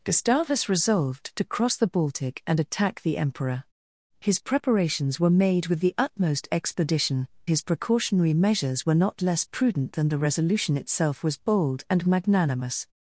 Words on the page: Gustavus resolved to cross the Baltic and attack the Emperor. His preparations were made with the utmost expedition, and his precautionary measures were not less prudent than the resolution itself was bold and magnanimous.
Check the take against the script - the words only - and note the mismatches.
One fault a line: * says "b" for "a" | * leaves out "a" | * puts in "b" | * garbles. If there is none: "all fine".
* leaves out "and"